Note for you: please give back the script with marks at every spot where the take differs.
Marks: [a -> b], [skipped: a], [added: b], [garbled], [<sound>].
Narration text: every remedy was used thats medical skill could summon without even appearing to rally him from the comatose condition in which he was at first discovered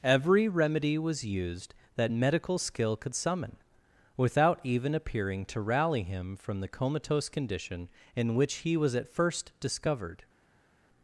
every remedy was used [thats -> that] medical skill could summon without even appearing to rally him from the comatose condition in which he was at first discovered